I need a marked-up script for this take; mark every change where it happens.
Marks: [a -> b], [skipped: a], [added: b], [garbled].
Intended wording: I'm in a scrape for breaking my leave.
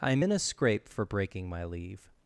I'm in a scrape for breaking my leave.